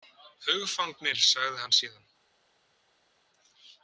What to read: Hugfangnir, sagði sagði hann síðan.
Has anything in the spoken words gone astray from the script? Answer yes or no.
yes